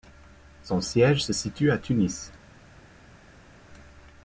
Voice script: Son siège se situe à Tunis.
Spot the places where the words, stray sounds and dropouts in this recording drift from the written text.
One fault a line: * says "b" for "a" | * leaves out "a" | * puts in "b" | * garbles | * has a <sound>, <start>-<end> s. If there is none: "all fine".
all fine